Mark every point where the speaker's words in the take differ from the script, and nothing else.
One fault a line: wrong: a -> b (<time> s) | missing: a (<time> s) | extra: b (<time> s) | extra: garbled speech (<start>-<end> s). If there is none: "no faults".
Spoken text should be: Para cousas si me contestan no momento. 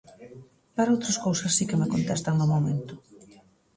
extra: outras (0.9 s)
extra: que (1.7 s)